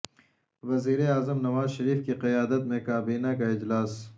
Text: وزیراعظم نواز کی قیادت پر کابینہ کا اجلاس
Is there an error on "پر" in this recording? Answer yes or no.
yes